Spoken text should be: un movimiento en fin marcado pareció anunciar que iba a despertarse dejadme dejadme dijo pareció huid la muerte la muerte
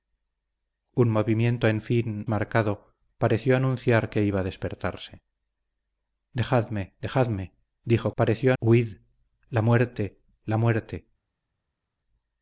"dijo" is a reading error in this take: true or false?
false